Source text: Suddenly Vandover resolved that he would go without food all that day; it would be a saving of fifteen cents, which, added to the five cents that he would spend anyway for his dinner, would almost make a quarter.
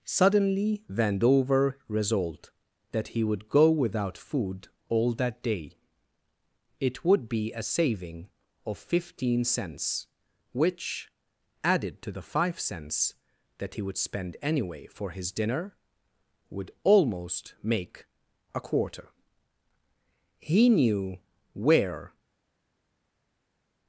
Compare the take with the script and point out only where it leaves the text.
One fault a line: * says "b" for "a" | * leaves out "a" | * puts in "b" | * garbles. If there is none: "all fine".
* puts in "He knew where"